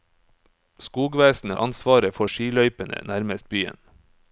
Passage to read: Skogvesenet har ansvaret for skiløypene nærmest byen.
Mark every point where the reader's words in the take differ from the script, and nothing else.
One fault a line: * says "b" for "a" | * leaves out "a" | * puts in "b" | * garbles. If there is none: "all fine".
* leaves out "har"